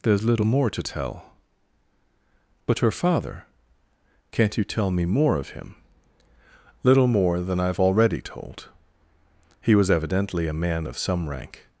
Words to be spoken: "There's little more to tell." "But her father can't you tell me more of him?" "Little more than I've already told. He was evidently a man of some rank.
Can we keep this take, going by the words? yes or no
yes